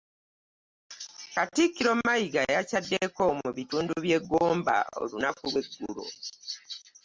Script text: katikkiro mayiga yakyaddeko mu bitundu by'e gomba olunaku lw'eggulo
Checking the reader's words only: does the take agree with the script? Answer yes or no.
yes